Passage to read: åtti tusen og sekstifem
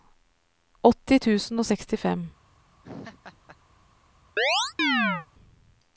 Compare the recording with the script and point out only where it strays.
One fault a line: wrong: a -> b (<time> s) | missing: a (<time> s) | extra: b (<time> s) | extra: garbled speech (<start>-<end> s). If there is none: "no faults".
no faults